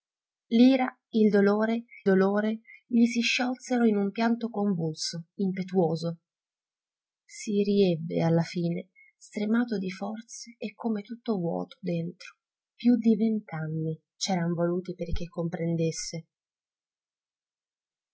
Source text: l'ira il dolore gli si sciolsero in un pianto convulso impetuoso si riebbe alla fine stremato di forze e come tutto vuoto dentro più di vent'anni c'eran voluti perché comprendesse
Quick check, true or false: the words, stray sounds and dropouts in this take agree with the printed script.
false